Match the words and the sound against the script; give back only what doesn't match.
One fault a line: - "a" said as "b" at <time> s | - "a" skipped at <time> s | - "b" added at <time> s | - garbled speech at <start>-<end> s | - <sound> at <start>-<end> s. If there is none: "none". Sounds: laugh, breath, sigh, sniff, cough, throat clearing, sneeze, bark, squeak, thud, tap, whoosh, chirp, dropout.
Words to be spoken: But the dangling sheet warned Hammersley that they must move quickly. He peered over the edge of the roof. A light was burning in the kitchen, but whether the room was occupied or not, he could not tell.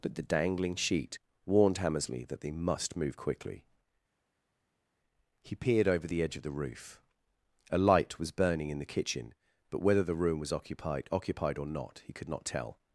- "occupied" added at 11.1 s